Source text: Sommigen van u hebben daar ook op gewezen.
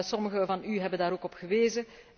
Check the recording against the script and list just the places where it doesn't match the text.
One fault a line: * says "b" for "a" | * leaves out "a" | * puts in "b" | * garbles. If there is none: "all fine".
all fine